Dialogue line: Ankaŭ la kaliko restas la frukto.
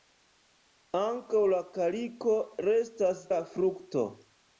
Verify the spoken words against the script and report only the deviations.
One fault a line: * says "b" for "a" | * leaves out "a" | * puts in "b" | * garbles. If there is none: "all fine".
all fine